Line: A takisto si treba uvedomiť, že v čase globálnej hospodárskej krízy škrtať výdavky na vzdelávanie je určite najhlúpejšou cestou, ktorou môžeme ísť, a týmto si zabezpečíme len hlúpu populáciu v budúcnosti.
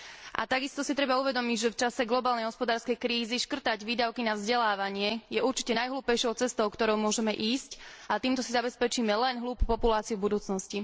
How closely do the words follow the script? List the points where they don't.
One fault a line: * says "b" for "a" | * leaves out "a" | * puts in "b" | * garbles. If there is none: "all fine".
all fine